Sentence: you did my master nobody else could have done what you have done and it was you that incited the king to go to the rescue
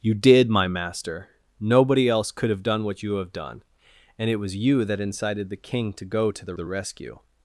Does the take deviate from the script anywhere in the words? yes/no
yes